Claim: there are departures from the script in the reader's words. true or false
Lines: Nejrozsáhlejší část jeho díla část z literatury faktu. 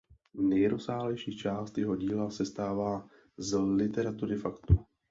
true